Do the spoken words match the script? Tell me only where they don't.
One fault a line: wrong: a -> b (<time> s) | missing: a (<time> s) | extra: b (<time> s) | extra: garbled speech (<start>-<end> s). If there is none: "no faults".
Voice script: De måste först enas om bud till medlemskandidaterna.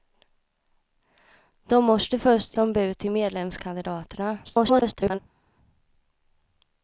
missing: enas (2.5 s)
extra: garbled speech (4.4-5.2 s)